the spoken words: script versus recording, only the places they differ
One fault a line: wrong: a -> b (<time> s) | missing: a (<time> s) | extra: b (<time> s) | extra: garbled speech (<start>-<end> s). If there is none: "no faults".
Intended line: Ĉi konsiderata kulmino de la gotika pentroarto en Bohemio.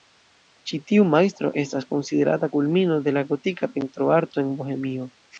extra: tiu majstro estas (0.9 s)